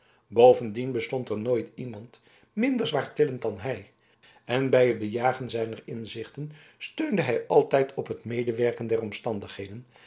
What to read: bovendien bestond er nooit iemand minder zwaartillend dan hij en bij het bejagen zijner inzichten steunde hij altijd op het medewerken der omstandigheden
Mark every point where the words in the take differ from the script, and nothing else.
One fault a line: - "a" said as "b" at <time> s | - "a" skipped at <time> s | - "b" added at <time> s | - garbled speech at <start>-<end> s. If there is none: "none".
none